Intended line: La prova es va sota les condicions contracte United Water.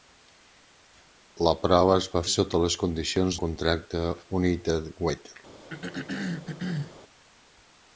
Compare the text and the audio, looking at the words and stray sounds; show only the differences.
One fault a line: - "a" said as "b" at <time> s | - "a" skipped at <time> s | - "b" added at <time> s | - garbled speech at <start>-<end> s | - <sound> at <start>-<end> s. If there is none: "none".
- throat clearing at 5.7-7.0 s